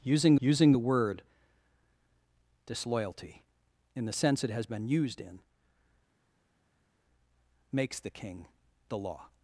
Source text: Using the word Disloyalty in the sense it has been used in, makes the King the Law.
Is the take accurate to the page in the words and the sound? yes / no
no